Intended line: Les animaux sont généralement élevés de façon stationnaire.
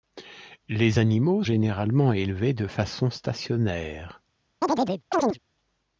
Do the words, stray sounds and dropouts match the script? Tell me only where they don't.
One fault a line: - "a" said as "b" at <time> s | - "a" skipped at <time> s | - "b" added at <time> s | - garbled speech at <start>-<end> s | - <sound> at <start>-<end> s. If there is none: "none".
- "sont" skipped at 1.4 s
- chirp at 4.6-5.4 s